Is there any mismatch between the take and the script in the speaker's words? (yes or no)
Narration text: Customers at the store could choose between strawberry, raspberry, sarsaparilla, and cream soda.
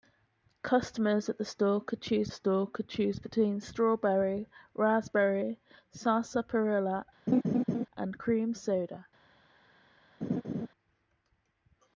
yes